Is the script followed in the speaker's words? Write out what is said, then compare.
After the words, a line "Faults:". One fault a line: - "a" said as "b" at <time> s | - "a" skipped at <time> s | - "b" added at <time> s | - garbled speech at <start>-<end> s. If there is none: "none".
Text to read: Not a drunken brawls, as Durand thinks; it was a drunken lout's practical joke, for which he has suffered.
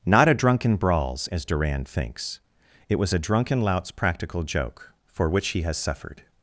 Not a drunken brawls, as Durand thinks; it was a drunken lout's practical joke, for which he has suffered.
Faults:
none